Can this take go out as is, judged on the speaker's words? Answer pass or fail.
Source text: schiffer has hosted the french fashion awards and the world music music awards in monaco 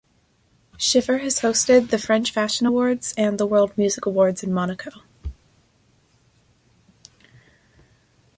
fail